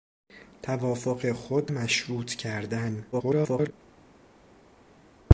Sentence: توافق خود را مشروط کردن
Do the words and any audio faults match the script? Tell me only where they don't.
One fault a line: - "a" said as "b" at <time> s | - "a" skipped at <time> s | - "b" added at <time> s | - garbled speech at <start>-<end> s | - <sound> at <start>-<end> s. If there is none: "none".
- "را" skipped at 1.7 s
- garbled speech at 3.1-3.7 s